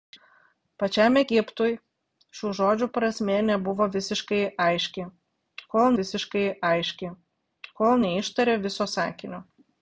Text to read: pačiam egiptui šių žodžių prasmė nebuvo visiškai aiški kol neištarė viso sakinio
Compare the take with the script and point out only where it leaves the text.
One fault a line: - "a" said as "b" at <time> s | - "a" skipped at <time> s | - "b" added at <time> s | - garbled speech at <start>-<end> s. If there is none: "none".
- "visiškai aiški kol" added at 6.0 s